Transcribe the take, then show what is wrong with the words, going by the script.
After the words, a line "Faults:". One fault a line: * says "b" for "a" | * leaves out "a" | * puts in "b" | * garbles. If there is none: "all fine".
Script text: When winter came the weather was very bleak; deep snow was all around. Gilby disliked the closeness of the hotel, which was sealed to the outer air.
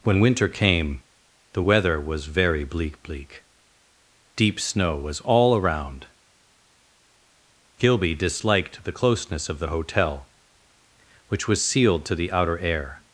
When winter came the weather was very bleak bleak; deep snow was all around. Gilby disliked the closeness of the hotel, which was sealed to the outer air.
Faults:
* puts in "bleak"